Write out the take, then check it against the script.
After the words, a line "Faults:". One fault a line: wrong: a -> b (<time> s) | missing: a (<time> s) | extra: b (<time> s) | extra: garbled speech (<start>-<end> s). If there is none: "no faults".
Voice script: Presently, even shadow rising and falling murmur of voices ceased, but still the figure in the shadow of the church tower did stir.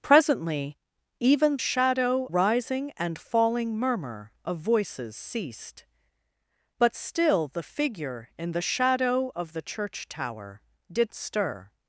Presently, even shadow rising and falling murmur of voices ceased, but still the figure in the shadow of the church tower did stir.
Faults:
no faults